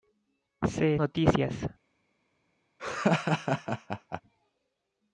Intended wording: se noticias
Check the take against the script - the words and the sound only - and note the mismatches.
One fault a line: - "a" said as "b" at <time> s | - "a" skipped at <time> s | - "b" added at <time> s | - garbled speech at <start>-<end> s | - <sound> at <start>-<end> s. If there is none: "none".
- laugh at 2.8-4.2 s